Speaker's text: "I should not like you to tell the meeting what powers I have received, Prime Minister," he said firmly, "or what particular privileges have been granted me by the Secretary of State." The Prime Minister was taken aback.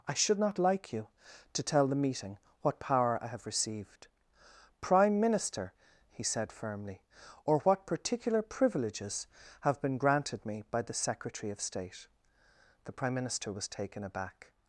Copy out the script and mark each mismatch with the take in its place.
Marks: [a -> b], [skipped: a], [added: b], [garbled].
"I should not like you to tell the meeting what [powers -> power] I have received, Prime Minister," he said firmly, "or what particular privileges have been granted me by the Secretary of State." The Prime Minister was taken aback.